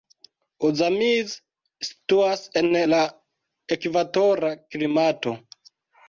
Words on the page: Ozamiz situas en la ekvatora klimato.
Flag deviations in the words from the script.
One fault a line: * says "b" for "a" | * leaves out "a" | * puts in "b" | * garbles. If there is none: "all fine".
all fine